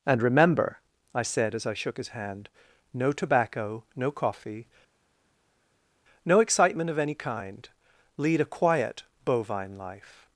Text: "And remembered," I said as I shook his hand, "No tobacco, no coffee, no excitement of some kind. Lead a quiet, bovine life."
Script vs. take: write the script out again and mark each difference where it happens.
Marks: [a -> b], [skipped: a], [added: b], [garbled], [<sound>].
"And [remembered," -> remember] I said as I shook his hand, "No tobacco, no coffee, no excitement of [some -> any] kind. Lead a quiet, bovine life."